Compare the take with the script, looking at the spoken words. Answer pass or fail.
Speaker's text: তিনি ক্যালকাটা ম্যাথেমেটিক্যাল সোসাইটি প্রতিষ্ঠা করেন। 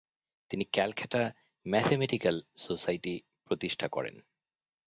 pass